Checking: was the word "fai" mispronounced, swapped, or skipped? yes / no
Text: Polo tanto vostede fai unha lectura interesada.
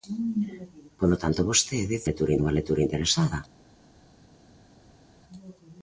yes